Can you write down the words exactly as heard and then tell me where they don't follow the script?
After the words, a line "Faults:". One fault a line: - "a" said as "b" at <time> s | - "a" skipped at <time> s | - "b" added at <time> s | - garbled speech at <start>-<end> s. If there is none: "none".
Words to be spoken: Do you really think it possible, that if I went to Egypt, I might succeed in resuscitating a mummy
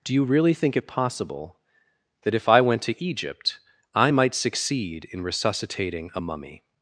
Do you really think it possible, that if I went to Egypt, I might succeed in resuscitating a mummy
Faults:
none